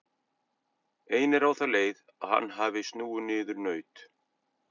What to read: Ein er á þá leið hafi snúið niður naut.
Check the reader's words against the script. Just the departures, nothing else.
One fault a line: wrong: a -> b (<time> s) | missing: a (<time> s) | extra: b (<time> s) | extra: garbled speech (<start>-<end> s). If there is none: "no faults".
extra: að hann (2.2 s)